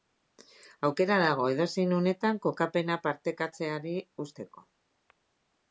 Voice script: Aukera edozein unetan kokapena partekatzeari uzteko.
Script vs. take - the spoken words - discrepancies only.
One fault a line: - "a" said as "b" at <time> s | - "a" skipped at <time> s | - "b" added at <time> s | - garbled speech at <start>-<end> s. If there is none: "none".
- "dago" added at 1.2 s